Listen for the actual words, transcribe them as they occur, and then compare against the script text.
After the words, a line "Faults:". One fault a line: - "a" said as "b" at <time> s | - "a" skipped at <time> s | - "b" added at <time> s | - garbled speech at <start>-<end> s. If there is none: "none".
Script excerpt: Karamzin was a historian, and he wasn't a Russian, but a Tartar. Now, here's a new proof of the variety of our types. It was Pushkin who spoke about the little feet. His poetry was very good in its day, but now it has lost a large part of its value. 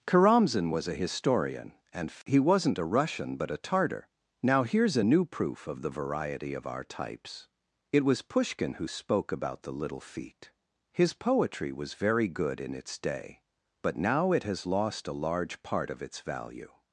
Karamzin was a historian, and he wasn't a Russian, but a Tartar. Now, here's a new proof of the variety of our types. It was Pushkin who spoke about the little feet. His poetry was very good in its day, but now it has lost a large part of its value.
Faults:
none